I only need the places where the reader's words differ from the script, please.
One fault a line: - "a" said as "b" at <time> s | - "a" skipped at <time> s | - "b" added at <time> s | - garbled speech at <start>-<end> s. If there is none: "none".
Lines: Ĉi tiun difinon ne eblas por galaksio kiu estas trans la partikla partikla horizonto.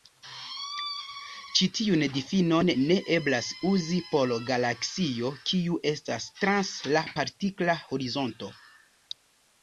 - "uzi" added at 3.7 s
- "partikla" skipped at 7.7 s